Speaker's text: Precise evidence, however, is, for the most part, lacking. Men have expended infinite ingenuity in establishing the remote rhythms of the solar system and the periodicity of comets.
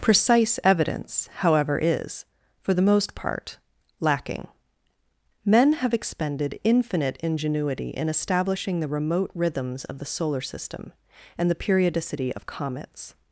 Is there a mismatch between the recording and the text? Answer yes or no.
no